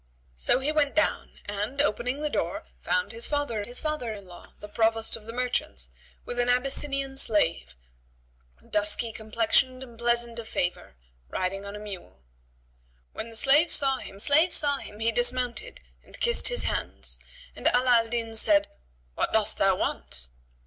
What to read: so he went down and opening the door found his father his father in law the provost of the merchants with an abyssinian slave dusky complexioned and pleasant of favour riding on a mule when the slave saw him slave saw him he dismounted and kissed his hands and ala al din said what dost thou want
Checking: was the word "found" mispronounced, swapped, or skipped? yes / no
no